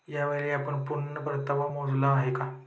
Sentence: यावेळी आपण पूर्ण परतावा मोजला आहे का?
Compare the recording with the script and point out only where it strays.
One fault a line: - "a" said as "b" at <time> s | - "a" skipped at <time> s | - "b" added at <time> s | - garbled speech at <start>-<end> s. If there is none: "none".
none